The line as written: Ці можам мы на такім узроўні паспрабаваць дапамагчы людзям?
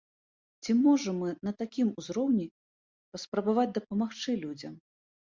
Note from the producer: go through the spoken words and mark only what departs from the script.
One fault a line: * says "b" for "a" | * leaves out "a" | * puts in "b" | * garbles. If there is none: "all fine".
all fine